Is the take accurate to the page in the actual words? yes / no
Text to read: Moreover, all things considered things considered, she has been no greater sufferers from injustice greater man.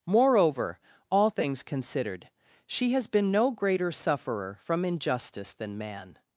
no